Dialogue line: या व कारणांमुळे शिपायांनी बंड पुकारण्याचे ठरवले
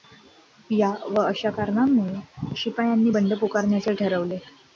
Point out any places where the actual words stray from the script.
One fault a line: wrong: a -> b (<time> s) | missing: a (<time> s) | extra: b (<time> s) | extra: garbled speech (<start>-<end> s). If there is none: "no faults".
extra: अशा (1.2 s)